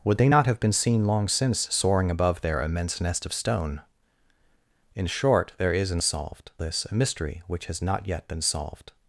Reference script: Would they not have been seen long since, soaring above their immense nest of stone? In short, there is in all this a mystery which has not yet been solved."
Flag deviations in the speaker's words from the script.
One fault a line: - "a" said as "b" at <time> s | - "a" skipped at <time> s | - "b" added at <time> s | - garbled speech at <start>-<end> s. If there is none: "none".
- "all" said as "solved" at 6.0 s